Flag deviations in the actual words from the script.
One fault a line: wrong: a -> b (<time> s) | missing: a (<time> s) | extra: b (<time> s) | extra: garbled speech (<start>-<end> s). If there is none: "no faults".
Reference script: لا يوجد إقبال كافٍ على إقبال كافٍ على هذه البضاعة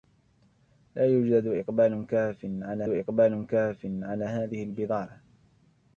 no faults